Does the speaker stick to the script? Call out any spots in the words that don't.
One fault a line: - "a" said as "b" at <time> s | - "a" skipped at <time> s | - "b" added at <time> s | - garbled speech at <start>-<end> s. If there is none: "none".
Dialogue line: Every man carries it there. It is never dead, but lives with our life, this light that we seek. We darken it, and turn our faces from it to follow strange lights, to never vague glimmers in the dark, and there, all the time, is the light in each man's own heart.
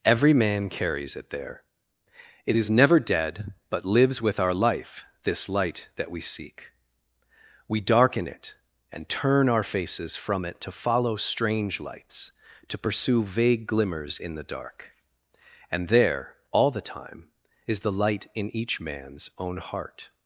- "never" said as "pursue" at 12.8 s